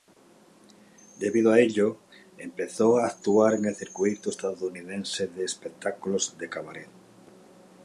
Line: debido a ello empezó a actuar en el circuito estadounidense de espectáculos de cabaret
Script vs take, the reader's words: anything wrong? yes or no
no